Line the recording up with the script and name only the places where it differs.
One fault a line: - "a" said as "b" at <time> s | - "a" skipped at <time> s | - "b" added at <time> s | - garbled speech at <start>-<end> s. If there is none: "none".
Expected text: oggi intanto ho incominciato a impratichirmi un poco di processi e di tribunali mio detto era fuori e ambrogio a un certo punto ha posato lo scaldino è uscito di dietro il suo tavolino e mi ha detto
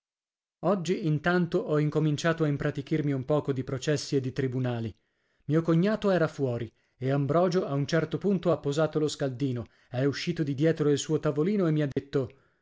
- "detto" said as "cognato" at 5.6 s